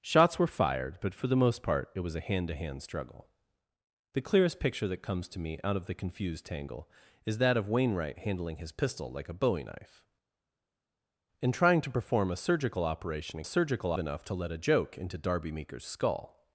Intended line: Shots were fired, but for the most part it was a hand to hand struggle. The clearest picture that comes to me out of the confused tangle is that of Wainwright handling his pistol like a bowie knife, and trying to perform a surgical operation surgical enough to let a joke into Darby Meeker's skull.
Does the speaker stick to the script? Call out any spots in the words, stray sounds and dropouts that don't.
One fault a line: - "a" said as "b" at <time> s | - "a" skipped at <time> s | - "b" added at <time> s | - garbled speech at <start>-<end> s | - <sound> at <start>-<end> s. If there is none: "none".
none